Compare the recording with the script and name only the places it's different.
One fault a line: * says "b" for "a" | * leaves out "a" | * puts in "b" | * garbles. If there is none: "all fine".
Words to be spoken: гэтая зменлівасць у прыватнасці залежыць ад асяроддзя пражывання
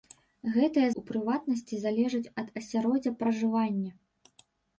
* leaves out "зменлівасць"